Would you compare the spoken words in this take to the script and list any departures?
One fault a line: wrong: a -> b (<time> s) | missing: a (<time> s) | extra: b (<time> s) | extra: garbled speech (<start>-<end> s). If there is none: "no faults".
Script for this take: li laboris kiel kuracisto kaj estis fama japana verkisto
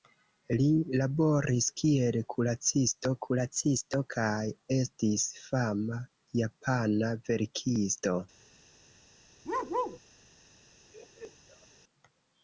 extra: kuracisto (3.3 s)